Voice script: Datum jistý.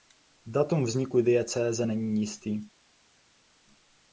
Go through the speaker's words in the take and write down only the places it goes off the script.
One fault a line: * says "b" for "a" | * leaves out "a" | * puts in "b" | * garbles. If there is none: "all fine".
* puts in "vzniku diecéze není"